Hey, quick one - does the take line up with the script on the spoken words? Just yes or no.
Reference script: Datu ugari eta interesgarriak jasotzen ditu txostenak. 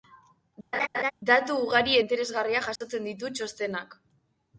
no